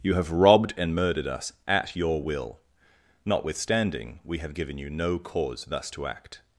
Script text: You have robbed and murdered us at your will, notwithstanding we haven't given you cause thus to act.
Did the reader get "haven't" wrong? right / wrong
wrong